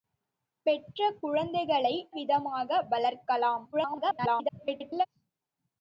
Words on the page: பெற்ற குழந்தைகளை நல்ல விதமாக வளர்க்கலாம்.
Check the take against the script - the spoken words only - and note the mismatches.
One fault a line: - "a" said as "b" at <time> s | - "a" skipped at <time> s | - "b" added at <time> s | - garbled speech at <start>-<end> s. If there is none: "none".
- "நல்ல" skipped at 1.9 s
- garbled speech at 3.7-5.1 s